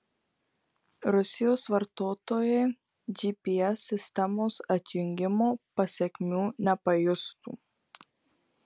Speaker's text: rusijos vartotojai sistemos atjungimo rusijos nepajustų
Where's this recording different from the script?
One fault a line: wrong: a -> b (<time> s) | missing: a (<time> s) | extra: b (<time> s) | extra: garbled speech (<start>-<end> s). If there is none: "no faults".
extra: gps (3.2 s)
wrong: rusijos -> pasekmių (5.8 s)